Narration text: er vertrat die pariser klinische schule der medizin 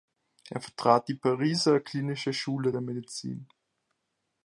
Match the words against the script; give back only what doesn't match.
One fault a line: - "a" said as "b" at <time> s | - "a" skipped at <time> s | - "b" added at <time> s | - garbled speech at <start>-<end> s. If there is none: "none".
none